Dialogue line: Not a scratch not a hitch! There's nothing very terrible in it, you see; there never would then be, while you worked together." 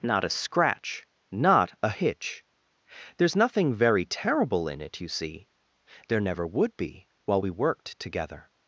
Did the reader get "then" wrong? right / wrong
wrong